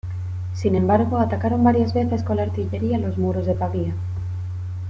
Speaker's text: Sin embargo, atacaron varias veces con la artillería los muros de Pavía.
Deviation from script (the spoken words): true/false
false